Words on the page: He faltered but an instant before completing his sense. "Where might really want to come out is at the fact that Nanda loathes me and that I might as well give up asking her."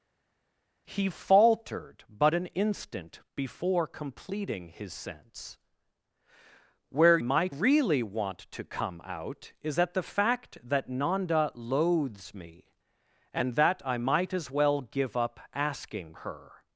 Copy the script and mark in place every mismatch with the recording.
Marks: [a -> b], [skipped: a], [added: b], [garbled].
He faltered but an instant before completing his sense. "Where might really want to come out is at the fact that Nanda loathes me and that I might as well give up asking her."